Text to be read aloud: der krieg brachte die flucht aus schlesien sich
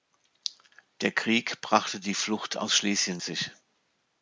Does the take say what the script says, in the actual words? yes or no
yes